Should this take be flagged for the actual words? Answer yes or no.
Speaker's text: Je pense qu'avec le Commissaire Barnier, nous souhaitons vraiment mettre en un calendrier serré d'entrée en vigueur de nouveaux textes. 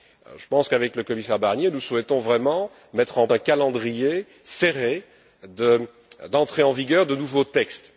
no